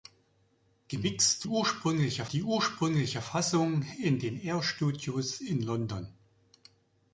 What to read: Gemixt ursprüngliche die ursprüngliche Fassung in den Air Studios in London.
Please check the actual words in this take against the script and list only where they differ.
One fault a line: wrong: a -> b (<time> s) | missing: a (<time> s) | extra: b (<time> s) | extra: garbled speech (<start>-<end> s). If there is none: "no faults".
no faults